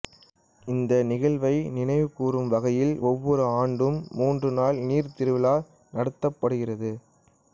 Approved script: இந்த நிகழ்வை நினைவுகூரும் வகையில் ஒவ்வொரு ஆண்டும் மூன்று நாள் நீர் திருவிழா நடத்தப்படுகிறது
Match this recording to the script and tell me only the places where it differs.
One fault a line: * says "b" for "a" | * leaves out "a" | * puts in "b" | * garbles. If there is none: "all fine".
all fine